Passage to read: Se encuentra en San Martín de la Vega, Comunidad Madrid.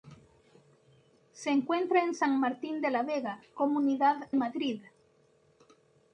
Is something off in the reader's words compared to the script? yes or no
no